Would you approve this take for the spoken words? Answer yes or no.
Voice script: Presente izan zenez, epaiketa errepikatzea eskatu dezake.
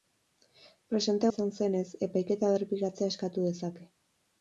yes